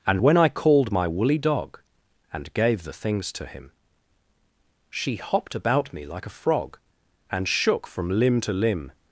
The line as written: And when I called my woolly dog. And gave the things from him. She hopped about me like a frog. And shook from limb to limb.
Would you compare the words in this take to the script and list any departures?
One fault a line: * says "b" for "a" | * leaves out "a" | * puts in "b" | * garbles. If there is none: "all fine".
* says "to" for "from"